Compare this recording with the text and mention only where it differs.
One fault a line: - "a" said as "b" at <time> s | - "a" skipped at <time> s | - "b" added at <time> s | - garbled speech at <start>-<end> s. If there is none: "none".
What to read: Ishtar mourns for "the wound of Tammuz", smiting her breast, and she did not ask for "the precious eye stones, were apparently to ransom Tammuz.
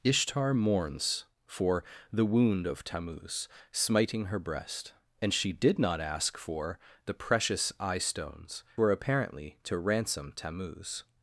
none